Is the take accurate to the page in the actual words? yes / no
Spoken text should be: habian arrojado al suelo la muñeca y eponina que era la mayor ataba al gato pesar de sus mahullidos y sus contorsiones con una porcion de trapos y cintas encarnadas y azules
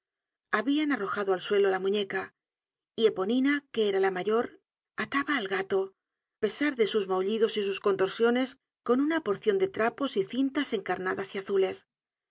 yes